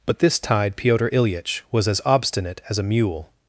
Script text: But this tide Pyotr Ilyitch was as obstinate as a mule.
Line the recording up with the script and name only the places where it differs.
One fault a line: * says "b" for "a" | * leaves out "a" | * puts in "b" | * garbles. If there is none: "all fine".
all fine